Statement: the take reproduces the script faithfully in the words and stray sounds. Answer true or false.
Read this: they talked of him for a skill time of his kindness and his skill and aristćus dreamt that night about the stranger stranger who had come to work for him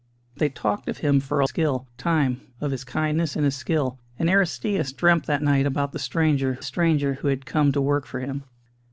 true